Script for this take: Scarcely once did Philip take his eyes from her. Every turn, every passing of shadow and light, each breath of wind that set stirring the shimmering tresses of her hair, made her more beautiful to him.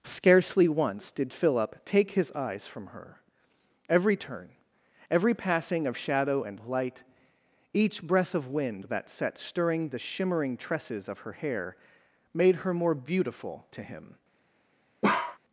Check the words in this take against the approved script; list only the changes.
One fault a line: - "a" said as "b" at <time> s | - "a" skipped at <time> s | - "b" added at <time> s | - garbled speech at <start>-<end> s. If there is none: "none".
none